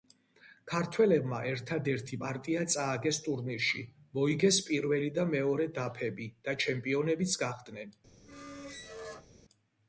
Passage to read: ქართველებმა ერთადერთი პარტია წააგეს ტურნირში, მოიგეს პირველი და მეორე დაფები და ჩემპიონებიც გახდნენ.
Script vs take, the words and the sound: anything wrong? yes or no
yes